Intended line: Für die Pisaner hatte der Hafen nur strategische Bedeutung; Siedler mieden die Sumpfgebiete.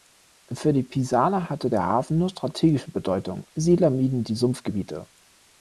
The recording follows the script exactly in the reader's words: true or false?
true